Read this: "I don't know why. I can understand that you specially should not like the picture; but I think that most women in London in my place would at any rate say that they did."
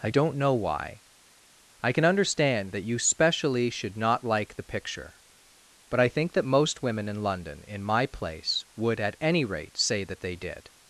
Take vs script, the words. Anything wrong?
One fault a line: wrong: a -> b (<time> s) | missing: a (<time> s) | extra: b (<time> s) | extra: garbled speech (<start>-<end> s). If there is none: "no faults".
no faults